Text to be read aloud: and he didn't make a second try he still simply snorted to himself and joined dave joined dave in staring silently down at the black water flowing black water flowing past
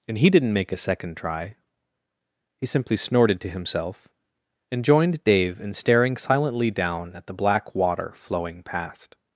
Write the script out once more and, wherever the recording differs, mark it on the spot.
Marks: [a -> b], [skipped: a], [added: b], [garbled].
and he didn't make a second try he [skipped: still] simply snorted to himself and joined dave [skipped: joined dave] in staring silently down at the black water flowing [skipped: black water flowing] past